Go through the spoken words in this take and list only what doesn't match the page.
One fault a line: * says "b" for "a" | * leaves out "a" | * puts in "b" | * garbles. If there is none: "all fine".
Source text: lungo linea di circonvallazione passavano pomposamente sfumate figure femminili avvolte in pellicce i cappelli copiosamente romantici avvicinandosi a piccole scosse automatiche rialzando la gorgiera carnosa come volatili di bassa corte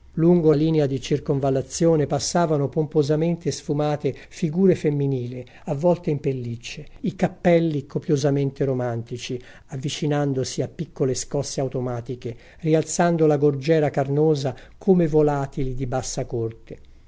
all fine